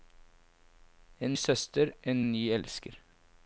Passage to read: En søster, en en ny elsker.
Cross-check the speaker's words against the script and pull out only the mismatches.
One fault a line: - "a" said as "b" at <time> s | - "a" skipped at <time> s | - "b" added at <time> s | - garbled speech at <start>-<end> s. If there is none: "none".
none